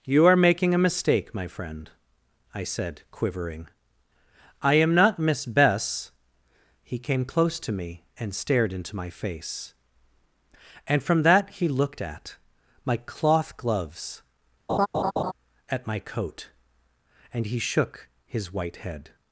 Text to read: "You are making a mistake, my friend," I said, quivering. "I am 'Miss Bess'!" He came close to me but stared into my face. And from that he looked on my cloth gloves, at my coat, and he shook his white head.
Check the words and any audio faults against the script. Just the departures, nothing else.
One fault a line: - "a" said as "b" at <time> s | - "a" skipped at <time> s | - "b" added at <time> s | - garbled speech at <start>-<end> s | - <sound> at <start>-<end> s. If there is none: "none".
- "not" added at 5.0 s
- "but" said as "and" at 8.2 s
- "on" said as "at" at 12.0 s
- laugh at 14.7-15.3 s